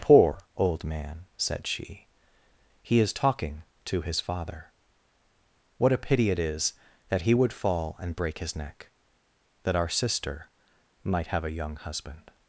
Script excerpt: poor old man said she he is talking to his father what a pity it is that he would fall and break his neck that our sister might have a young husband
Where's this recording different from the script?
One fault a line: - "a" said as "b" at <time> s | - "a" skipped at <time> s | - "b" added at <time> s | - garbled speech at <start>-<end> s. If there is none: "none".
none